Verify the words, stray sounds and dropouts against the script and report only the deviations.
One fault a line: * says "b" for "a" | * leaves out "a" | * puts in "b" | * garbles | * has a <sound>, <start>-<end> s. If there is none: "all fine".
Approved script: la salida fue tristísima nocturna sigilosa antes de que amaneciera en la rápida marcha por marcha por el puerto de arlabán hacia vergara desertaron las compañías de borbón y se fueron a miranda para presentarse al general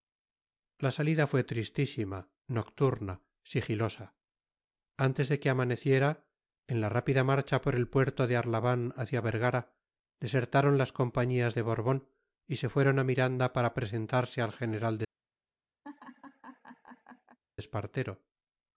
* leaves out "marcha por"
* has a laugh, 15.8-17.4 s